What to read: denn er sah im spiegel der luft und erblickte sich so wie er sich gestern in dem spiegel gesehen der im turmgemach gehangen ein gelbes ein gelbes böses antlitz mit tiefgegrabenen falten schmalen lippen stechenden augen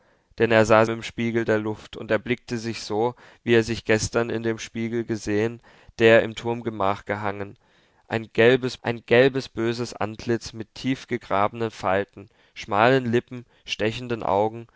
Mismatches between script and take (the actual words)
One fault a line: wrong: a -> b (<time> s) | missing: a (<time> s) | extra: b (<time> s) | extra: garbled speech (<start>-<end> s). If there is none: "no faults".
no faults